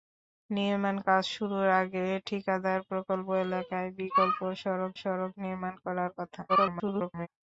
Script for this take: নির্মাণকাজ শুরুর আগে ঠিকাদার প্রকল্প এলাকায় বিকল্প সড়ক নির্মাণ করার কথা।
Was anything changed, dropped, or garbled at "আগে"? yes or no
no